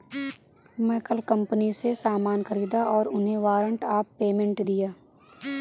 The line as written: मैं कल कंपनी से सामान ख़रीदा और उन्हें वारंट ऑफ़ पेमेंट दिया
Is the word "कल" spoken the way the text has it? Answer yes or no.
yes